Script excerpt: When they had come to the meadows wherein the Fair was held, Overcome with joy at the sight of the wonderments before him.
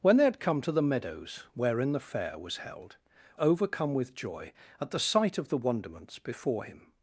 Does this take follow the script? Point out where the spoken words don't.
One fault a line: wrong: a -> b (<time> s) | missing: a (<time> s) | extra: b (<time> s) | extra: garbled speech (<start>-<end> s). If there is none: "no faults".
no faults